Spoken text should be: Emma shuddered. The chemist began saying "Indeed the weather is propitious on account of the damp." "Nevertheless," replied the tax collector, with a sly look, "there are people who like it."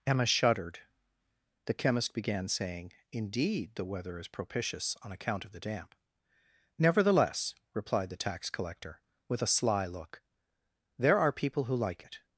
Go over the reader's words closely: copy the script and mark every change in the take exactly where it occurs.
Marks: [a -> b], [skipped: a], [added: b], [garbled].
Emma shuddered. The chemist began saying "Indeed the weather is propitious on account of the damp." "Nevertheless," replied the tax collector, with a sly look, "there are people who like it."